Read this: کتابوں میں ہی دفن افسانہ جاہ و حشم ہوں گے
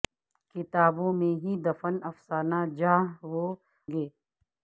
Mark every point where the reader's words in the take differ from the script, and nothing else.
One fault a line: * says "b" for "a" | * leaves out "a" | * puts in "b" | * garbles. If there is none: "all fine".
* leaves out "حشم ہوں"